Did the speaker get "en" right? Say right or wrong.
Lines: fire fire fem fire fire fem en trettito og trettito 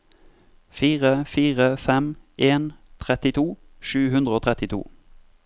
wrong